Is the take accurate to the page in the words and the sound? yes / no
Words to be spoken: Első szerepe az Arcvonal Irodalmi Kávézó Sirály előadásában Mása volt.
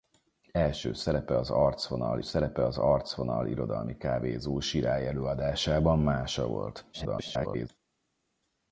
no